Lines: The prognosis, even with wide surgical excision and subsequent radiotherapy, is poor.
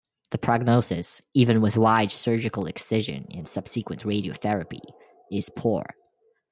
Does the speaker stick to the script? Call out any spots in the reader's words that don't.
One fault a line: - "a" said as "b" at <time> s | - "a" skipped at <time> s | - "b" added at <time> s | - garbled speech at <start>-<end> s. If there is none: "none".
none